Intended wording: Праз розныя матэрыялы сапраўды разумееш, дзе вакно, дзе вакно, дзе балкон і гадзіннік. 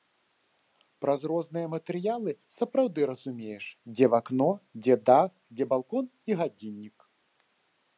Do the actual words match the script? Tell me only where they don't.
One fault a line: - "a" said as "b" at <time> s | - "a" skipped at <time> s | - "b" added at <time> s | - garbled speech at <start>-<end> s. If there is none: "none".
- "вакно" said as "дах" at 5.1 s